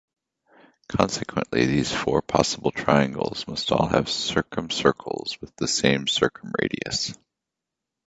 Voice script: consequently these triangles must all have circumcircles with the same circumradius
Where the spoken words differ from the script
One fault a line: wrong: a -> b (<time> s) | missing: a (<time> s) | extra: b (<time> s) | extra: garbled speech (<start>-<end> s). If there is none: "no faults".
extra: four possible (1.9 s)